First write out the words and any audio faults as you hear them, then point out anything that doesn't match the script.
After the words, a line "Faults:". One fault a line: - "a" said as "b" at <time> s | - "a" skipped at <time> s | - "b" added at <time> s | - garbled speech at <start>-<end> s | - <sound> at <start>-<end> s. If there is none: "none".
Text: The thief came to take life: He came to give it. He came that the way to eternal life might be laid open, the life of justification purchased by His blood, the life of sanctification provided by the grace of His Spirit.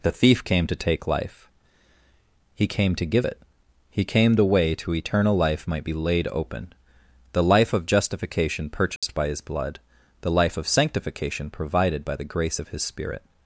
The thief came to take life: He came to give it. He came the way to eternal life might be laid open, the life of justification purchased by His blood, the life of sanctification provided by the grace of His Spirit.
Faults:
- "that" skipped at 4.4 s
- dropout at 9.0-9.0 s